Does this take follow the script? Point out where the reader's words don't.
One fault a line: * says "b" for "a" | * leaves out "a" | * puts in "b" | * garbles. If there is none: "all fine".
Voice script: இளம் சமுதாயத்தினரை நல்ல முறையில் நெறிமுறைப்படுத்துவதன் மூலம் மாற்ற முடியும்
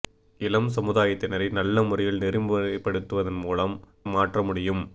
all fine